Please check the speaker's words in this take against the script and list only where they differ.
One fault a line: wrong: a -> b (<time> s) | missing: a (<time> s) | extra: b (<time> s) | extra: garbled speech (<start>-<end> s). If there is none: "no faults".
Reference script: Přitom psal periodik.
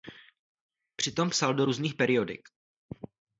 extra: do různých (1.5 s)